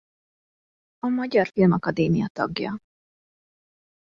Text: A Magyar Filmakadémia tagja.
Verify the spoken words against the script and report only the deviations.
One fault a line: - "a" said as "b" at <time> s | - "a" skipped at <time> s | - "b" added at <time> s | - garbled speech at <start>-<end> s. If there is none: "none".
none